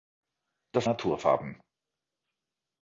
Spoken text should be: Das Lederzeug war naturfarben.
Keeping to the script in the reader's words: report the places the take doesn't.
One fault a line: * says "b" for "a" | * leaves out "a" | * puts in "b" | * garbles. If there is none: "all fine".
* leaves out "Lederzeug war"